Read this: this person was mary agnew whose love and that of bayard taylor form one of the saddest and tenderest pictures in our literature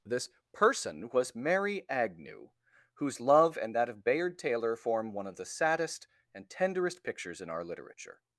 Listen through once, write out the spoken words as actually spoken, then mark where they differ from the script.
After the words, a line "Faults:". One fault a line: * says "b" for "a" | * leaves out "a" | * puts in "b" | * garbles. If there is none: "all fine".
this person was mary agnew whose love and that of bayard taylor form one of the saddest and tenderest pictures in our literature
Faults:
all fine